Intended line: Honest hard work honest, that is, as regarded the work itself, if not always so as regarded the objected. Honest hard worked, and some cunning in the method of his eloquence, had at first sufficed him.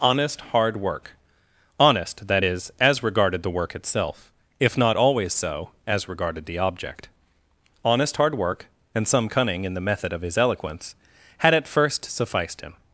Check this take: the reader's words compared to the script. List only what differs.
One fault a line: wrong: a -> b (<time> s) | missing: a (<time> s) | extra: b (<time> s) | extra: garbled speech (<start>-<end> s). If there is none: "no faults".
wrong: objected -> object (6.6 s)
wrong: worked -> work (8.3 s)